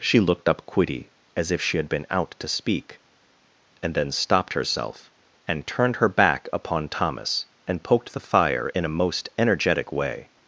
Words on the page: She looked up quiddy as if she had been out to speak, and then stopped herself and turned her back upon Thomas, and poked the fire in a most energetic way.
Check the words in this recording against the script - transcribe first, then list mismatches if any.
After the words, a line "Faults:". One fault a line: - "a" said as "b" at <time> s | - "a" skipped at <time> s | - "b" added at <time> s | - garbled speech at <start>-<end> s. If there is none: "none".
She looked up quiddy as if she had been out to speak, and then stopped herself and turned her back upon Thomas, and poked the fire in a most energetic way.
Faults:
none